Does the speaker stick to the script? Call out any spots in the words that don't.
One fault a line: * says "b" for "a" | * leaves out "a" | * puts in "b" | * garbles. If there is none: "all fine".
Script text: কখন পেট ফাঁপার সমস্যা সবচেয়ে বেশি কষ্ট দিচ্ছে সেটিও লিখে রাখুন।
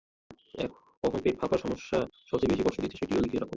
all fine